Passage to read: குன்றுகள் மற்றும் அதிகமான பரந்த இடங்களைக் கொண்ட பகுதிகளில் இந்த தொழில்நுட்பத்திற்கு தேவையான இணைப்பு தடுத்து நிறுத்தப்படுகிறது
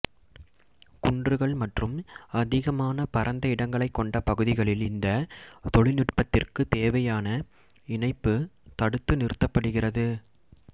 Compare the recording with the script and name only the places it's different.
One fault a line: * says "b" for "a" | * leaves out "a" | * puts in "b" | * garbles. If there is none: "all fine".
all fine